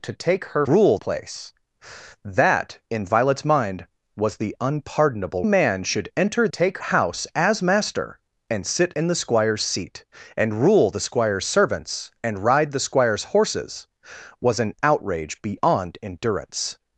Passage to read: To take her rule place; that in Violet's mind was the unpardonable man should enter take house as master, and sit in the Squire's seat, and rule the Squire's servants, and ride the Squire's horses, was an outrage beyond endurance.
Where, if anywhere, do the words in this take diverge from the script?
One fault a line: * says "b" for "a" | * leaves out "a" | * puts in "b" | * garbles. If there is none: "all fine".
all fine